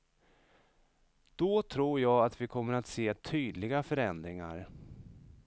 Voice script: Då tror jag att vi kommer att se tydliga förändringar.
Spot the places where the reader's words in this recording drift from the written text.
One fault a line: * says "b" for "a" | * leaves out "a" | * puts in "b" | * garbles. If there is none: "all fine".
all fine